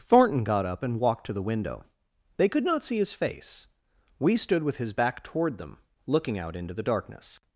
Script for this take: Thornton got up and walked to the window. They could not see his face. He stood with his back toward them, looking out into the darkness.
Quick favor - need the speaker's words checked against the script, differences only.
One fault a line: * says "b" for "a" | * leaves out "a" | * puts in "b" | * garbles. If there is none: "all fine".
* says "We" for "He"